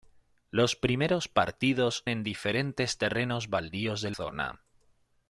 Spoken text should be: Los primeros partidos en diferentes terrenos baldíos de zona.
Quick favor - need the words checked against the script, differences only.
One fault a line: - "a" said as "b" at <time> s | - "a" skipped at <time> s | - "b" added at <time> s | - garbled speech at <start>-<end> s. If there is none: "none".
none